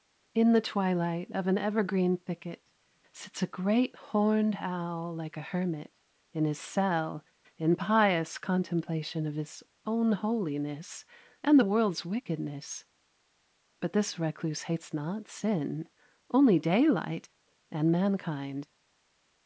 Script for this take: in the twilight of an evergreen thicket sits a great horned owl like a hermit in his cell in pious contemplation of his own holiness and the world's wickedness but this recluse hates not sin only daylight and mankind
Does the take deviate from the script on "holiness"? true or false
false